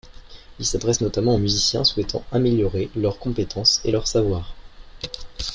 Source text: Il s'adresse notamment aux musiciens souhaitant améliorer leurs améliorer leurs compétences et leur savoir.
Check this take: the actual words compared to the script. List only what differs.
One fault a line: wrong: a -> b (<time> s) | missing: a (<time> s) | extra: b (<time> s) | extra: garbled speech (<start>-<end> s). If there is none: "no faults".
missing: améliorer leurs (3.2 s)